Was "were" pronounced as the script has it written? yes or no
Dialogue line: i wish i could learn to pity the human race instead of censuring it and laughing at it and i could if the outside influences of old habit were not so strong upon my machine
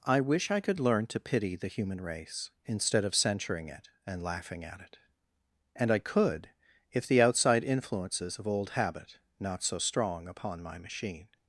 no